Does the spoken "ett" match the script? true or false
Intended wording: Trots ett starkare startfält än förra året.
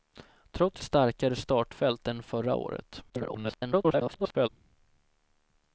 false